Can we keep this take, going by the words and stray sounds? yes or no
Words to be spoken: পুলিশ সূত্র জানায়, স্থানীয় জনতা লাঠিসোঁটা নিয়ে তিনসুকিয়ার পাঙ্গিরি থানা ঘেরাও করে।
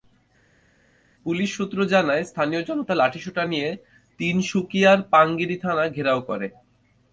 yes